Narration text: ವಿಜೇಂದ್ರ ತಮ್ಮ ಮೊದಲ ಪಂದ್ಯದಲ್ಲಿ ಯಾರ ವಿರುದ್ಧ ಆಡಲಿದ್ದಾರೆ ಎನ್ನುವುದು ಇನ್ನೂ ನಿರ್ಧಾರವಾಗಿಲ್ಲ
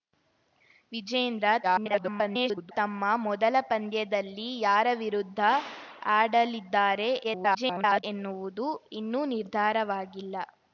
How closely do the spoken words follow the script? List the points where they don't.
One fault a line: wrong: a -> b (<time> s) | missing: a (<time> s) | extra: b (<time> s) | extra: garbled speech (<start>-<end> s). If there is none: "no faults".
extra: garbled speech (1.6-2.7 s)
extra: garbled speech (7.2-8.0 s)